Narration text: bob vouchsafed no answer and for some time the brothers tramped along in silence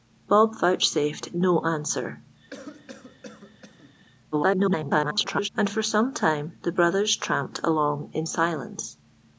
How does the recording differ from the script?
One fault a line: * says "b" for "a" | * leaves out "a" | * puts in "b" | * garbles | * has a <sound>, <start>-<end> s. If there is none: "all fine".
* has a cough, 2.5-4.0 s
* garbles